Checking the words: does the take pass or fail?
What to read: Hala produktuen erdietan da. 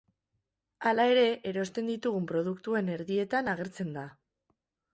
fail